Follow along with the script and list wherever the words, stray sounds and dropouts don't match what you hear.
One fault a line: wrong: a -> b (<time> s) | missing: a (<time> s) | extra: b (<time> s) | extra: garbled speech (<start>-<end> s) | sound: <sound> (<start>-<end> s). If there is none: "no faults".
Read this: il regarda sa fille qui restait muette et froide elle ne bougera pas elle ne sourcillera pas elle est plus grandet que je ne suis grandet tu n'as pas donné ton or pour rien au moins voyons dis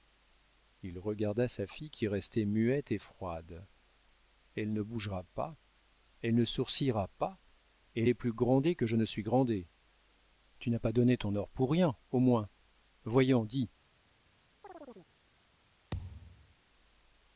sound: chirp (14.6-15.1 s)
sound: thud (15.9-16.5 s)